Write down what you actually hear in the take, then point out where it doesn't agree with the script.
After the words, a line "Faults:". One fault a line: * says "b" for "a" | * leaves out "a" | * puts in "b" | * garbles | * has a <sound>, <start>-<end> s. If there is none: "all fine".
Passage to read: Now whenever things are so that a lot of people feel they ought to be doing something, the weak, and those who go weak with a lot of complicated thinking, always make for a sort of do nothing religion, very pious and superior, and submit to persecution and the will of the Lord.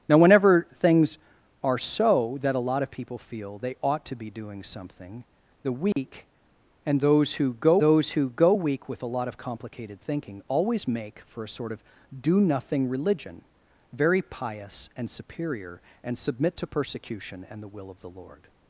Now whenever things are so that a lot of people feel they ought to be doing something, the weak, and those who go those who go weak with a lot of complicated thinking, always make for a sort of do nothing religion, very pious and superior, and submit to persecution and the will of the Lord.
Faults:
* has a dropout, 5.9-6.0 s
* puts in "those who go"